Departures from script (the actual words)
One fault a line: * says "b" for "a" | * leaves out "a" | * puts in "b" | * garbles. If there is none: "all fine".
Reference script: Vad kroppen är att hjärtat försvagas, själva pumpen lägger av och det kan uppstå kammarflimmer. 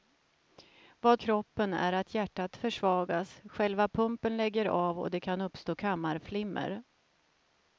all fine